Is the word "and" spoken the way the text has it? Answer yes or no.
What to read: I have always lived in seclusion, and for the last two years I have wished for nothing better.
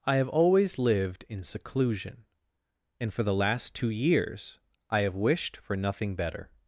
yes